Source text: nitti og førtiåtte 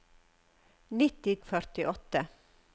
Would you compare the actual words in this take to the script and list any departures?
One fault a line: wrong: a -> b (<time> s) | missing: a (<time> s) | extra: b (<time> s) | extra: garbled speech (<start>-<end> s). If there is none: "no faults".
no faults